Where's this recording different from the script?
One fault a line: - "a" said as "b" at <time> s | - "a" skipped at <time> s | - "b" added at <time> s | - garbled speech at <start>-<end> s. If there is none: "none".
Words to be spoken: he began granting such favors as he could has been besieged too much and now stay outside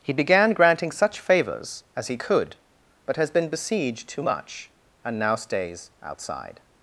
- "but" added at 3.0 s
- "stay" said as "stays" at 5.3 s